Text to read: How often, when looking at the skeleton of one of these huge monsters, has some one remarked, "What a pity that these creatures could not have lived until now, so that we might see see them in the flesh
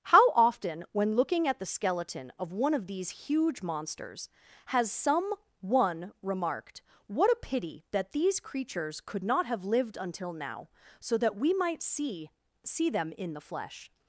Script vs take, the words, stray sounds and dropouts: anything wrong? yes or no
no